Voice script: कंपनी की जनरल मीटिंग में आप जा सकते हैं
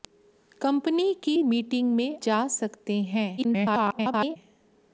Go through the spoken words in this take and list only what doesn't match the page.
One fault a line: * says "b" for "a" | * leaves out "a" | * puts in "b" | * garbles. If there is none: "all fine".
* leaves out "जनरल"
* leaves out "आप"
* garbles